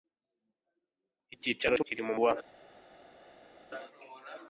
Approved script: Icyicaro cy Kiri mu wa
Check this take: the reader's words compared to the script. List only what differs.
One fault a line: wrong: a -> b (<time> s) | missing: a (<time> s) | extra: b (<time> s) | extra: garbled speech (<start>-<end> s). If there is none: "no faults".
no faults